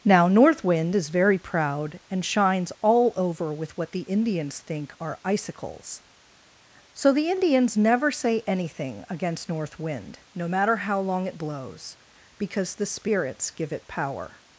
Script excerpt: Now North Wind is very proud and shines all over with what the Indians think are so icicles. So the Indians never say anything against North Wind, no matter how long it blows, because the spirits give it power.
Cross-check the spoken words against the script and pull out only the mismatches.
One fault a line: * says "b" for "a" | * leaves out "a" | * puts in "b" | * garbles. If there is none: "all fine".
* leaves out "so"